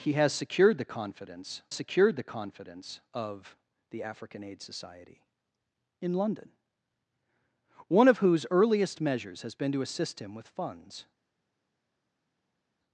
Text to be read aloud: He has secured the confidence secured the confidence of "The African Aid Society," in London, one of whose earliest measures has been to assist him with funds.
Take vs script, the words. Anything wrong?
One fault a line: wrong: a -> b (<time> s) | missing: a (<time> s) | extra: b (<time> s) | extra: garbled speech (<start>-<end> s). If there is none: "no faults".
no faults